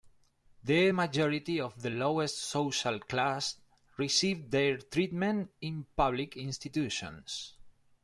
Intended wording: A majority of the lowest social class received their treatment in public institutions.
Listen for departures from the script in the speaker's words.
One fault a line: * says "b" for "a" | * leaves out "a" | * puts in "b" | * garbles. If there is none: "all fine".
* says "The" for "A"